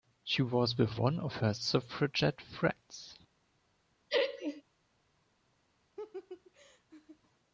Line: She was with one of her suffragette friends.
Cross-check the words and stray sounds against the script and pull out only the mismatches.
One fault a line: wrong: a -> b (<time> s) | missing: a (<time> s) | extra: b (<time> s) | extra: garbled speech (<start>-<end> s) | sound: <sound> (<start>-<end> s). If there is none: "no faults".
sound: laugh (4.1-4.6 s)
sound: laugh (6.0-7.2 s)